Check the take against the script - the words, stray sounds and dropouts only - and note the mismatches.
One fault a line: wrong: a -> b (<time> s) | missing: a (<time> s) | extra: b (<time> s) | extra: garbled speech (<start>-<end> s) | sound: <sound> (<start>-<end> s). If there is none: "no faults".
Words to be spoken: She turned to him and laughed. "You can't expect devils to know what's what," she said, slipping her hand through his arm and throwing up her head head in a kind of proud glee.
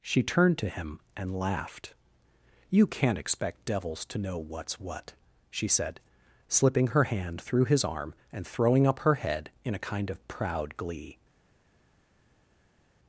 missing: head (9.5 s)